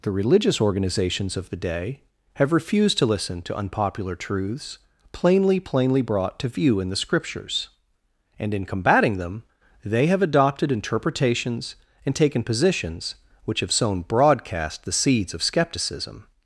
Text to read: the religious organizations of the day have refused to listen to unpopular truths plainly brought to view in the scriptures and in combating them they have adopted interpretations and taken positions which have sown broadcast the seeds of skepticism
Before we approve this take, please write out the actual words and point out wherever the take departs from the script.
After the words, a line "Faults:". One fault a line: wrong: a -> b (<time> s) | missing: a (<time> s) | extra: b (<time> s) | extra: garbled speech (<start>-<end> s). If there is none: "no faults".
the religious organizations of the day have refused to listen to unpopular truths plainly plainly brought to view in the scriptures and in combating them they have adopted interpretations and taken positions which have sown broadcast the seeds of skepticism
Faults:
extra: plainly (5.6 s)